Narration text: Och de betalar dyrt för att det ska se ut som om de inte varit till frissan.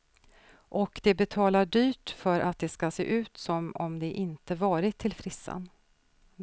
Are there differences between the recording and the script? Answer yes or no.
no